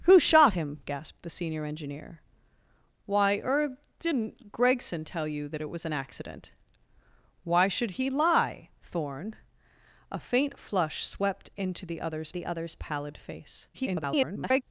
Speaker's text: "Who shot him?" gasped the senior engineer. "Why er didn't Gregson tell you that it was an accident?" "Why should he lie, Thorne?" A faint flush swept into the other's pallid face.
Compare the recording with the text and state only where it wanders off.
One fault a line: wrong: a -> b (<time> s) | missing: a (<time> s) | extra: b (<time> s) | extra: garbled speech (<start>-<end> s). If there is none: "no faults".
extra: the other's (12.3 s)
extra: garbled speech (13.7-14.6 s)